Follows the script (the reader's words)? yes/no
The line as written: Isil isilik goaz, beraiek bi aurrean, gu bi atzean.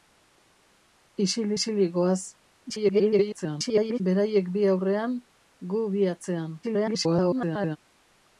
no